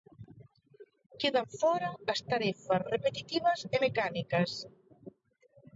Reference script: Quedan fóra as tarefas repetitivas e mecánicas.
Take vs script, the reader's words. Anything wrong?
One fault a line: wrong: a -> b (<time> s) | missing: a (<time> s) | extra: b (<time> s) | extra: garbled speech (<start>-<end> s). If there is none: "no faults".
no faults